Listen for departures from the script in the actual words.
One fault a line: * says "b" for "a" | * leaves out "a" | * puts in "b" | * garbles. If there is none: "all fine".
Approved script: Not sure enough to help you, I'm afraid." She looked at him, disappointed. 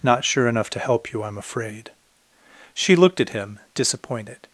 all fine